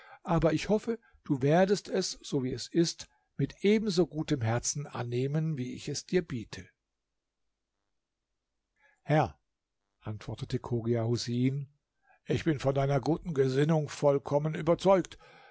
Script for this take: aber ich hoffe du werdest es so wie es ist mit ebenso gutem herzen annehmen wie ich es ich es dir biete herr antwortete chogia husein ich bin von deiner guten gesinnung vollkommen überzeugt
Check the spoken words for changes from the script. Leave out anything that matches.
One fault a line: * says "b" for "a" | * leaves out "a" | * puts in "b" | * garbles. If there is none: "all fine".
* leaves out "ich es"